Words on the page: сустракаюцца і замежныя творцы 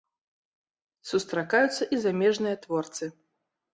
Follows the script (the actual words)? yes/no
yes